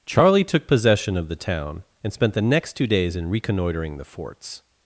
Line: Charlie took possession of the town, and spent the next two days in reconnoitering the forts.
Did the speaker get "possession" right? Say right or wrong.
right